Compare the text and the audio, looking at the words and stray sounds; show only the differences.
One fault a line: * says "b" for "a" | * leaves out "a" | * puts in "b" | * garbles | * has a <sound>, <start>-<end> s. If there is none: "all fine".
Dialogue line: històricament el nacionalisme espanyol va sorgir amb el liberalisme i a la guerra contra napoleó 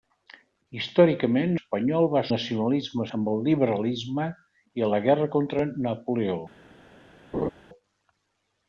* leaves out "el nacionalisme"
* says "nacionalisme" for "sorgir"
* has a laugh, 7.3-7.5 s